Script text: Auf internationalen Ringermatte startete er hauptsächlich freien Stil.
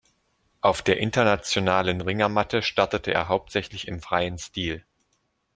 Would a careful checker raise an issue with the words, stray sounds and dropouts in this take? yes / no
yes